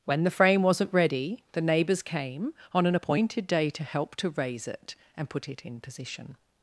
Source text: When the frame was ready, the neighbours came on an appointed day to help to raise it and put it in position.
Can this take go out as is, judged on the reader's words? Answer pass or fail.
fail